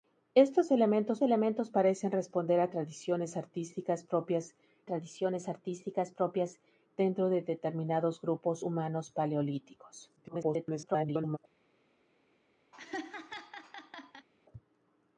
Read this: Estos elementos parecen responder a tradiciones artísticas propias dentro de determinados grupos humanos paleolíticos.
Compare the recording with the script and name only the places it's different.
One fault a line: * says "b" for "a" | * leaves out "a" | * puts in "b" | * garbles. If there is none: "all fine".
* puts in "elementos"
* puts in "tradiciones artísticas propias"
* garbles